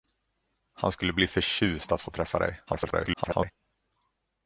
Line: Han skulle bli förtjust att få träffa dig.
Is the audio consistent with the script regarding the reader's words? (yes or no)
no